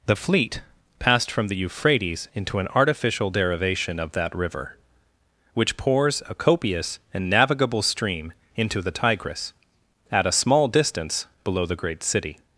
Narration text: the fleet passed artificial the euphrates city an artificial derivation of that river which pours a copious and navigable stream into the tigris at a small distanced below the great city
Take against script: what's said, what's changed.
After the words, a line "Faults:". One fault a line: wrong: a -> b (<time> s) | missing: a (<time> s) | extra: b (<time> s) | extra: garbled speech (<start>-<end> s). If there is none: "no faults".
the fleet passed from the euphrates into an artificial derivation of that river which pours a copious and navigable stream into the tigris at a small distance below the great city
Faults:
wrong: artificial -> from (1.3 s)
wrong: city -> into (2.3 s)
wrong: distanced -> distance (10.7 s)